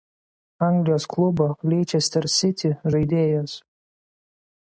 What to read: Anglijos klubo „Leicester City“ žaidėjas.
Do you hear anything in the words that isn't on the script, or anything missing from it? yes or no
no